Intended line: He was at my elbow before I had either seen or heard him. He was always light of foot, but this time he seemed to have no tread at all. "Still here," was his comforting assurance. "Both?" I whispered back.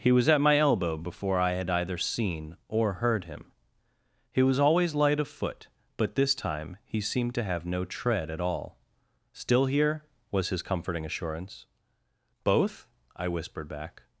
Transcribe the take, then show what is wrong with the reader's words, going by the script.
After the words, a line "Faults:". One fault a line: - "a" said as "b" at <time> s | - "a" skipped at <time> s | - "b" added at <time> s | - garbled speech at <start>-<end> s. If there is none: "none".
He was at my elbow before I had either seen or heard him. He was always light of foot, but this time he seemed to have no tread at all. "Still here," was his comforting assurance. "Both?" I whispered back.
Faults:
none